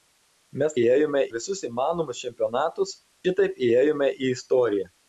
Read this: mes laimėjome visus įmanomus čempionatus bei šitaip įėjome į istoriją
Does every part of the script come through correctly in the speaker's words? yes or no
no